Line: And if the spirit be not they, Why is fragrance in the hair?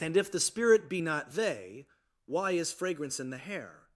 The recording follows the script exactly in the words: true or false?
true